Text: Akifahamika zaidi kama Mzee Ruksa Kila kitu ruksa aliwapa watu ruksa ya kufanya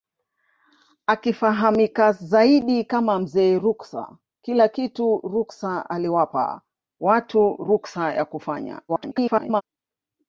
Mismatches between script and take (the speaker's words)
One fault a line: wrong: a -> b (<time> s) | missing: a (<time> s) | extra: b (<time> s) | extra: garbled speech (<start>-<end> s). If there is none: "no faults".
extra: garbled speech (8.9-9.6 s)